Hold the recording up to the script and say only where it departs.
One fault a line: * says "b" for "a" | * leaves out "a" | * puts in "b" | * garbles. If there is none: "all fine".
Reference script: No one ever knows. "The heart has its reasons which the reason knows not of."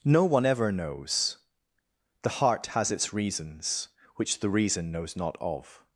all fine